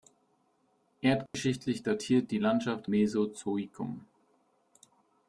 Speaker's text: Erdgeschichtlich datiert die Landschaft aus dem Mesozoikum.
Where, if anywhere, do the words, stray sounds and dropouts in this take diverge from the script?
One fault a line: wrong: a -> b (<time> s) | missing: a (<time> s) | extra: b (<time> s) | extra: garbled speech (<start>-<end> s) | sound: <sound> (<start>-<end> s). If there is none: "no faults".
sound: dropout (1.3-1.3 s)
missing: aus dem (2.9 s)